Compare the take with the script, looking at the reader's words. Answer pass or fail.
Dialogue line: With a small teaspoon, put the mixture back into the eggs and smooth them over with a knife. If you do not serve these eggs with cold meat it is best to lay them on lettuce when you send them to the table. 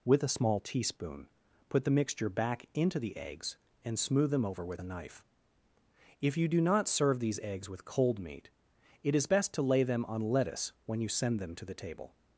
pass